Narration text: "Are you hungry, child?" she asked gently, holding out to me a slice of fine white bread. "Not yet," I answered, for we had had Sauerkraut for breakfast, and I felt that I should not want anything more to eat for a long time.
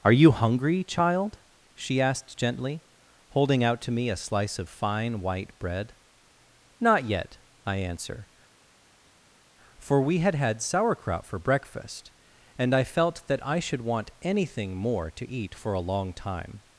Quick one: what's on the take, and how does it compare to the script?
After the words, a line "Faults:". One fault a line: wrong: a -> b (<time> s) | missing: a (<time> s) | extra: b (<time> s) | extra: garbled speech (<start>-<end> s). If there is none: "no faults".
"Are you hungry, child?" she asked gently, holding out to me a slice of fine white bread. "Not yet," I answer, for we had had Sauerkraut for breakfast, and I felt that I should want anything more to eat for a long time.
Faults:
wrong: answered -> answer (7.8 s)
missing: not (13.8 s)